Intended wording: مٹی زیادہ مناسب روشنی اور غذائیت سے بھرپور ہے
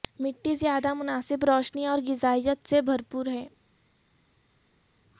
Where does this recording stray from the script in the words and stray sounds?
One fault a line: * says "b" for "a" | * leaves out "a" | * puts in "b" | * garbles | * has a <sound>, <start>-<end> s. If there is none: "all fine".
all fine